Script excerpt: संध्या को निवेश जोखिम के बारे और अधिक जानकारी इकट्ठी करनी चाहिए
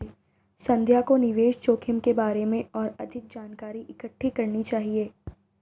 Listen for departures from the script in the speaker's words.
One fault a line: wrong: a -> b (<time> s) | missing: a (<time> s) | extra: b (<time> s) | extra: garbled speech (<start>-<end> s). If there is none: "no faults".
extra: में (2.5 s)